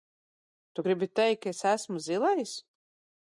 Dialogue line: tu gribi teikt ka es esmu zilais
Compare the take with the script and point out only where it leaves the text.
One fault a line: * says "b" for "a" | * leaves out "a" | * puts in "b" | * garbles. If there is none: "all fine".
all fine